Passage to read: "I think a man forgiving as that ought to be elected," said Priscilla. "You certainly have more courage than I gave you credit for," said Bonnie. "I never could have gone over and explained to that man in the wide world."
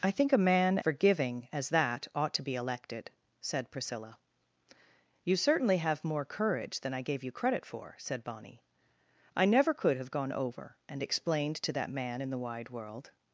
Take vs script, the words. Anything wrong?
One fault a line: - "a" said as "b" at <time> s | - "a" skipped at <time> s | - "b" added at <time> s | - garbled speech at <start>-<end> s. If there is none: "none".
none